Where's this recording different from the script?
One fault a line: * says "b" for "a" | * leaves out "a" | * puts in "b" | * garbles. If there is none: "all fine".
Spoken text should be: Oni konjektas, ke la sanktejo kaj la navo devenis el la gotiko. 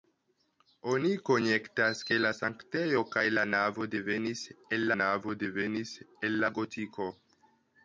* puts in "navo devenis el"